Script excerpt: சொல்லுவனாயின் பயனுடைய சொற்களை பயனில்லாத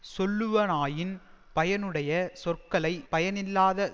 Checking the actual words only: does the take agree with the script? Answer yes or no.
yes